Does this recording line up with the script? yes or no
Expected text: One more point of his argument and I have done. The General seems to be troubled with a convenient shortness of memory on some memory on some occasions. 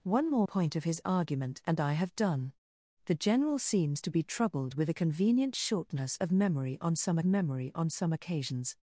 yes